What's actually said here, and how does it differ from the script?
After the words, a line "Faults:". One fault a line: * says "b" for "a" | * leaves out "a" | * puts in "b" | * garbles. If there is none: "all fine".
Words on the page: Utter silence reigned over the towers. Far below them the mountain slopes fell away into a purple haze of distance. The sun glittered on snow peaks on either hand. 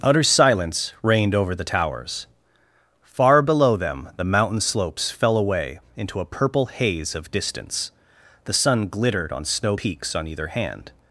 Utter silence reigned over the towers. Far below them the mountain slopes fell away into a purple haze of distance. The sun glittered on snow peaks on either hand.
Faults:
all fine